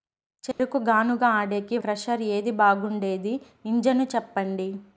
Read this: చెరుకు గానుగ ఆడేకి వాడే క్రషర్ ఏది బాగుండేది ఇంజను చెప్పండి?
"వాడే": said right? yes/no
no